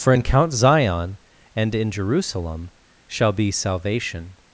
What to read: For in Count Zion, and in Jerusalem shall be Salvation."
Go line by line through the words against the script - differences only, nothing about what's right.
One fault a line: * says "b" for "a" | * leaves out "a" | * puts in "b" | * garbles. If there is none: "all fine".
all fine